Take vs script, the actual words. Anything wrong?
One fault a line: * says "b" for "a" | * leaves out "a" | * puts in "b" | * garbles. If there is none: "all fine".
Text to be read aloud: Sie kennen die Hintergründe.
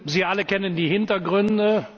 * puts in "alle"